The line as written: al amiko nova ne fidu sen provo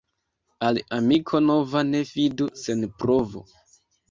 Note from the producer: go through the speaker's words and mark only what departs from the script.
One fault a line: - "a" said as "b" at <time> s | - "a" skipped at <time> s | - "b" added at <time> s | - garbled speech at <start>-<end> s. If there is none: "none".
none